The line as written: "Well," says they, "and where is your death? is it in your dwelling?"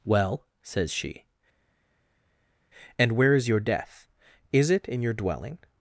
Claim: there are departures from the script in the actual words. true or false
true